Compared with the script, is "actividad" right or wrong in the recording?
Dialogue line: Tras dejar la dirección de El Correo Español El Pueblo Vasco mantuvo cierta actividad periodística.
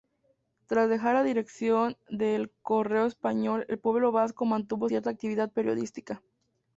right